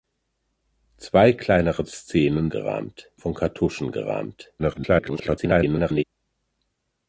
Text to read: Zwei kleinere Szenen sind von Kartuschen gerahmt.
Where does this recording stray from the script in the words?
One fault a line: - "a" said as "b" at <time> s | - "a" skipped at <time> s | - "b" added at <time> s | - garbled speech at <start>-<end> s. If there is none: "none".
- "sind" said as "gerahmt" at 2.5 s
- garbled speech at 4.6-6.0 s